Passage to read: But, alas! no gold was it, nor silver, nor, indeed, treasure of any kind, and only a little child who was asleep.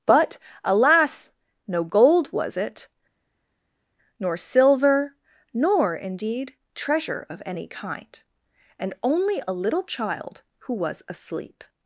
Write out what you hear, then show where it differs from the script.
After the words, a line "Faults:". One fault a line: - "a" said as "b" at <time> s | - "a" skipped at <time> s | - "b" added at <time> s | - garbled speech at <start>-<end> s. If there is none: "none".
But, alas! no gold was it, nor silver, nor, indeed, treasure of any kind, and only a little child who was asleep.
Faults:
none